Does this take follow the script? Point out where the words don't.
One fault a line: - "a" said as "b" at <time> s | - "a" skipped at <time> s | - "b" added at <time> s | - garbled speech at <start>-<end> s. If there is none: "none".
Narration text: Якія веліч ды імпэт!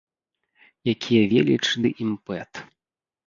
none